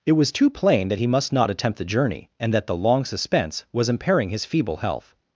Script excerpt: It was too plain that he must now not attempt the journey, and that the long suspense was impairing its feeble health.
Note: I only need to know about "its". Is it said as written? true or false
false